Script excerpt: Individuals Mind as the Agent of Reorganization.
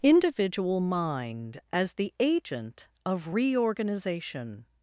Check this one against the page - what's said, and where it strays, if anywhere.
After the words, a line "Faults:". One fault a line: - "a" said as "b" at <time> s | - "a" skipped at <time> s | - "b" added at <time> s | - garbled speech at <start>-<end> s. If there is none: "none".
Individual Mind as the Agent of Reorganization.
Faults:
- "Individuals" said as "Individual" at 0.0 s